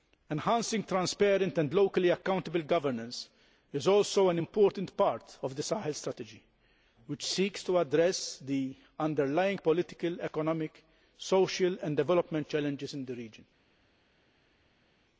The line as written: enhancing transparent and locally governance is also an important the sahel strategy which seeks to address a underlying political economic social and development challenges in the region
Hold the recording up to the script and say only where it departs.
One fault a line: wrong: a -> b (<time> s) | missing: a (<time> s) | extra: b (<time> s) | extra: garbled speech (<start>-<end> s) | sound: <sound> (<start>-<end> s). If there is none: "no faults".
extra: accountable (2.1 s)
extra: part of (5.0 s)
wrong: a -> the (8.4 s)